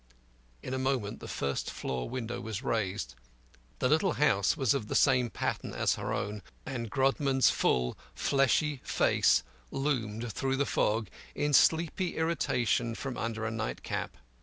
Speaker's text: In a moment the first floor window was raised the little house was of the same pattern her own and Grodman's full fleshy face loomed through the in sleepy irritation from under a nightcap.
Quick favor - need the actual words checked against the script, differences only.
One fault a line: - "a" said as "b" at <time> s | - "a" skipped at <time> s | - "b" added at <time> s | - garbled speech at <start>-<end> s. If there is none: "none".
- "as" added at 5.8 s
- "fog" added at 10.7 s